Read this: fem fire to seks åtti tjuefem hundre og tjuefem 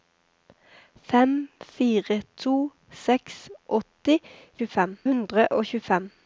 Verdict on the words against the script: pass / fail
pass